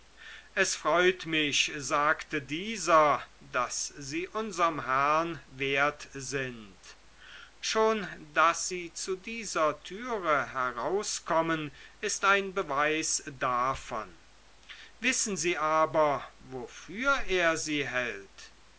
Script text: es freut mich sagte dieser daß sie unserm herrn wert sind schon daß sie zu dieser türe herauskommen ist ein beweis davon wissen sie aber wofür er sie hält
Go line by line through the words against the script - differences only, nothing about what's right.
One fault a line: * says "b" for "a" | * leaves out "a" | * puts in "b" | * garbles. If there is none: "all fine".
all fine